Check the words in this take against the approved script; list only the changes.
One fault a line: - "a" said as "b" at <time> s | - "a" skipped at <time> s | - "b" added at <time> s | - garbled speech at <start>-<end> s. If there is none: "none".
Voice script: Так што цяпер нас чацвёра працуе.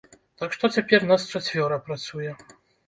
none